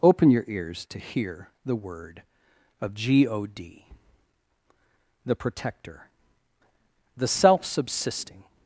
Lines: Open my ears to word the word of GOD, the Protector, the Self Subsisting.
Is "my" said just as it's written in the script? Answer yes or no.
no